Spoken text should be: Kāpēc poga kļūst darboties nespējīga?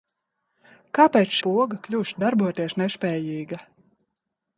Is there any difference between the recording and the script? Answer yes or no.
no